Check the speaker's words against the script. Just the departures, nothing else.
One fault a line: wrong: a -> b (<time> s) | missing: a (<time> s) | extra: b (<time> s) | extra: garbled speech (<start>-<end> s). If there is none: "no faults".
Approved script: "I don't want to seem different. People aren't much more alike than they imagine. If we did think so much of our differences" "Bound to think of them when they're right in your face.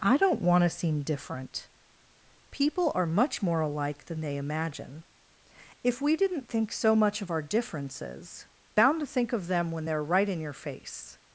wrong: aren't -> are (2.9 s)
wrong: did -> didn't (6.2 s)